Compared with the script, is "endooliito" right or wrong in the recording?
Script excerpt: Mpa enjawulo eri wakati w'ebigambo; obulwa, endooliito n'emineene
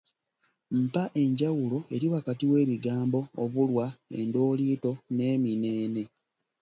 right